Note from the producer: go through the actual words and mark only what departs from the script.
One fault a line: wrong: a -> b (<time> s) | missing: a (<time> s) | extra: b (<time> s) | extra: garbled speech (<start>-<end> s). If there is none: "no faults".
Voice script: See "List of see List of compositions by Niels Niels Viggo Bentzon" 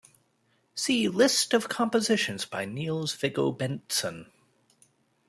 missing: see List of (1.7 s)
missing: Niels (3.1 s)